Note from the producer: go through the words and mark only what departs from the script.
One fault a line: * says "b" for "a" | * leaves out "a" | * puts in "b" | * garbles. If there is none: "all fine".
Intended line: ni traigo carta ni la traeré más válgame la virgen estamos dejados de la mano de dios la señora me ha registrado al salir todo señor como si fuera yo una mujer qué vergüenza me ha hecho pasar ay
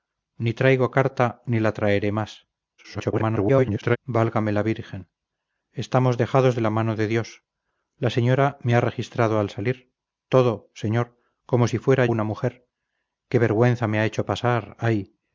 * garbles
* leaves out "yo"